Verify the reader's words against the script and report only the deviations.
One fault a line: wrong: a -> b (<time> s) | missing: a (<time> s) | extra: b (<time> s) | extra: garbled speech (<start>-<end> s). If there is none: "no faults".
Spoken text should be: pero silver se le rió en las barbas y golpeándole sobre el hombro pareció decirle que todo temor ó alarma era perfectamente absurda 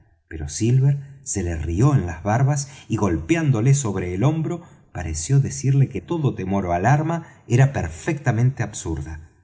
no faults